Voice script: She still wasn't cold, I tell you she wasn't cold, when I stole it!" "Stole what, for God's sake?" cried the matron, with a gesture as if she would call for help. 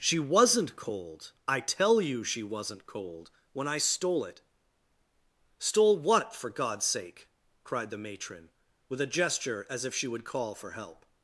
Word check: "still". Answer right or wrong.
wrong